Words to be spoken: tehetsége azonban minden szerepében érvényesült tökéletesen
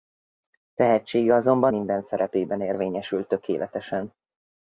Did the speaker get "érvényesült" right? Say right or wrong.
right